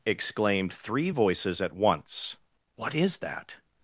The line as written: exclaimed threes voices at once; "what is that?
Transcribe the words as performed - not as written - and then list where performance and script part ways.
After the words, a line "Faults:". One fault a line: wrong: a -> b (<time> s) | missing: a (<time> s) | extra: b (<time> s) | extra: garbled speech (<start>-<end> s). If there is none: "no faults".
exclaimed three voices at once; "what is that?
Faults:
wrong: threes -> three (0.7 s)